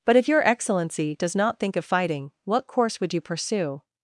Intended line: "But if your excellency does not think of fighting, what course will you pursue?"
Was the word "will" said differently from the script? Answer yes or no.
yes